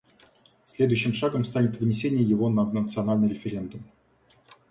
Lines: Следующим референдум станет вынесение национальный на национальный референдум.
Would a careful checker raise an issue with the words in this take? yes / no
yes